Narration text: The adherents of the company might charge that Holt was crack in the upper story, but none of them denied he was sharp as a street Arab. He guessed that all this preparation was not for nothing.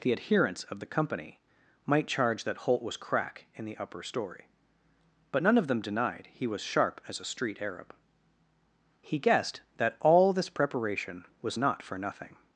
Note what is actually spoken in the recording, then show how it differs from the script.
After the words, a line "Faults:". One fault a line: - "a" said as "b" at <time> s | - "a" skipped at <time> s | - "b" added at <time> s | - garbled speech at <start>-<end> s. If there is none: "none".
The adherents of the company might charge that Holt was crack in the upper story, but none of them denied he was sharp as a street Arab. He guessed that all this preparation was not for nothing.
Faults:
none